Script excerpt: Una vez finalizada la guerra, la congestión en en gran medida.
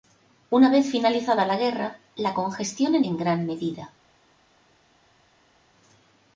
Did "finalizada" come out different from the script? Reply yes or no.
no